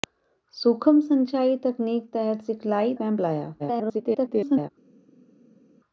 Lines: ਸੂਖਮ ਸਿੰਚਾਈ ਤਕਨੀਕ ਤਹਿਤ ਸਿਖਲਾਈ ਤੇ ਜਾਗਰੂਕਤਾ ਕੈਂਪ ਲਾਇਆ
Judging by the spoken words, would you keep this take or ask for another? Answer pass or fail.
fail